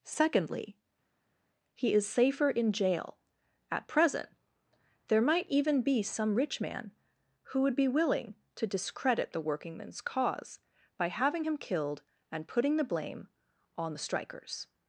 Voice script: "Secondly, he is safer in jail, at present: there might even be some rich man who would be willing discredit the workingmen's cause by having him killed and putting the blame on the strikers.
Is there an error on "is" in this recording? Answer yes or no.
no